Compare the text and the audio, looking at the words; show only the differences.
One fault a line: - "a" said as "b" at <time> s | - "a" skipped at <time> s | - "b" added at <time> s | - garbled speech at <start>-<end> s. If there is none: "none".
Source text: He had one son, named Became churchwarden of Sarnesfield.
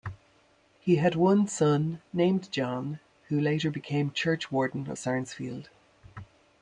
- "John who later" added at 2.5 s